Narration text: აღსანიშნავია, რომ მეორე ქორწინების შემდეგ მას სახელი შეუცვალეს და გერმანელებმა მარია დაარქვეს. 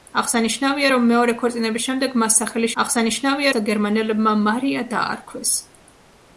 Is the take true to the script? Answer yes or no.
no